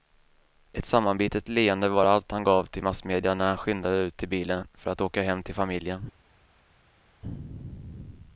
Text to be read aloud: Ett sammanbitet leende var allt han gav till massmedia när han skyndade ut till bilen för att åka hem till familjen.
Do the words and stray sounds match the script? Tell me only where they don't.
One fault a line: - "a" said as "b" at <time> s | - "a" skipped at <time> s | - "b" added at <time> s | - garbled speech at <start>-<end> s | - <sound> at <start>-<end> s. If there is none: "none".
none